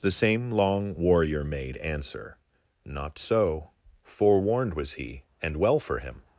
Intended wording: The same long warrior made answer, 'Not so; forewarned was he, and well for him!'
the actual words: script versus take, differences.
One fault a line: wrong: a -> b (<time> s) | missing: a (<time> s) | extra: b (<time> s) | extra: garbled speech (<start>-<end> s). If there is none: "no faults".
no faults